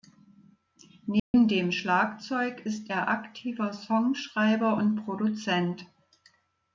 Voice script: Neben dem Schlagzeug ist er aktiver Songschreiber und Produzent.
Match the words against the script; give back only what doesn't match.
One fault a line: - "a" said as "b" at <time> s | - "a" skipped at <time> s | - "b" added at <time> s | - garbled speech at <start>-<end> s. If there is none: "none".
none